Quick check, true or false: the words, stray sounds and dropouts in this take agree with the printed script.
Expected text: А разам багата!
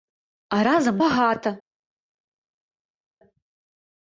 true